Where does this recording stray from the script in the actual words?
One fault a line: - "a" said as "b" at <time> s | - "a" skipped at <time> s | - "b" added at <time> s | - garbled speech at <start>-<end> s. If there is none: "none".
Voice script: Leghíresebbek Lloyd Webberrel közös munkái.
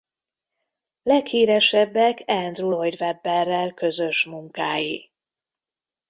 - "Andrew" added at 2.3 s